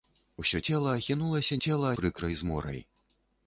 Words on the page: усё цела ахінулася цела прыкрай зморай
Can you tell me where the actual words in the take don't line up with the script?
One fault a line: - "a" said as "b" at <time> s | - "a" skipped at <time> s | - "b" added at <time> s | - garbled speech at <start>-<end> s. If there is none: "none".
none